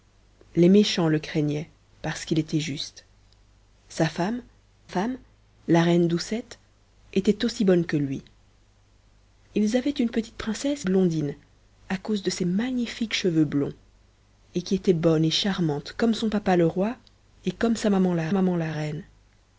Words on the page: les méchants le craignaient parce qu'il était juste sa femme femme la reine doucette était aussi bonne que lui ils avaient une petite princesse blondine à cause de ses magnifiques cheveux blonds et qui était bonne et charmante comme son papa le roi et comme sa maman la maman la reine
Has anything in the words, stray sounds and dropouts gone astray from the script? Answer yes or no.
no